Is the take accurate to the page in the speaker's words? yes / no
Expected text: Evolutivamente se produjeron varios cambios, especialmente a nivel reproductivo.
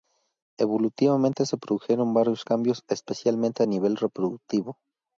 yes